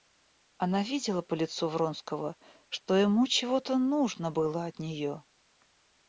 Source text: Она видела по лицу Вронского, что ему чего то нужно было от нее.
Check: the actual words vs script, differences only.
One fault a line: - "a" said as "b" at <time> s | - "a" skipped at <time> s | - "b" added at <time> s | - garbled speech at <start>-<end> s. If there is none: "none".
none